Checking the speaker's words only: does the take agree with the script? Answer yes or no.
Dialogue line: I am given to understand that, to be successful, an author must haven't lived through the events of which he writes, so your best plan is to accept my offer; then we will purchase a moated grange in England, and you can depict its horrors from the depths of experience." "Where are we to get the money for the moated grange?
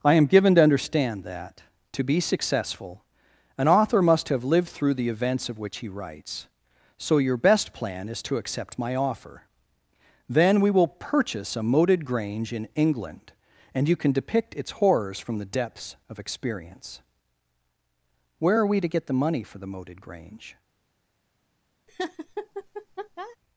no